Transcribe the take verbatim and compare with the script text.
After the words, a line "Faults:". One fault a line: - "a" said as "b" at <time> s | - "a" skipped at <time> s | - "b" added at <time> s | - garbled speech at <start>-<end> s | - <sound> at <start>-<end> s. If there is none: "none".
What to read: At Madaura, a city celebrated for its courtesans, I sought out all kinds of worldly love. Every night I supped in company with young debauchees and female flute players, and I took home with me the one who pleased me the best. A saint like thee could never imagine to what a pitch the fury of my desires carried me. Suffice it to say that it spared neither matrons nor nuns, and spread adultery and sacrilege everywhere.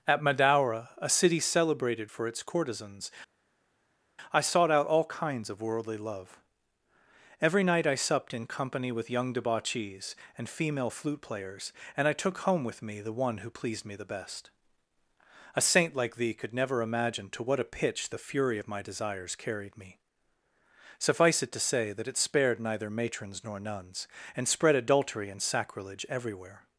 At Madaura, a city celebrated for its courtesans, I sought out all kinds of worldly love. Every night I supped in company with young debauchees and female flute players, and I took home with me the one who pleased me the best. A saint like thee could never imagine to what a pitch the fury of my desires carried me. Suffice it to say that it spared neither matrons nor nuns, and spread adultery and sacrilege everywhere.
Faults:
none